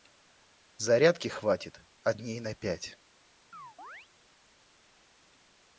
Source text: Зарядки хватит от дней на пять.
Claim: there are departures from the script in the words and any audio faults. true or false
true